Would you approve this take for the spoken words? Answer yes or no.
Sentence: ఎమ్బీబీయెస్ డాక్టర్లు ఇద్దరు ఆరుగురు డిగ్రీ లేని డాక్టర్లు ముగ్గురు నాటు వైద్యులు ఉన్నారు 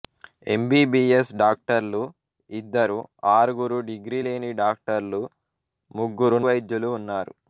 no